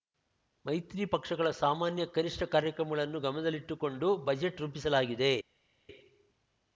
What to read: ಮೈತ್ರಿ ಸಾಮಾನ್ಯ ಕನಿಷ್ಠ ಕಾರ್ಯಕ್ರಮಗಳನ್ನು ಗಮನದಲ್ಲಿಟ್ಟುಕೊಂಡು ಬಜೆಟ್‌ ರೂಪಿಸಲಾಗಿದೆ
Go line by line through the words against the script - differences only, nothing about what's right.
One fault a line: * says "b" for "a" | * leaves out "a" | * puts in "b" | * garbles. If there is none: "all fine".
* puts in "ಪಕ್ಷಗಳ"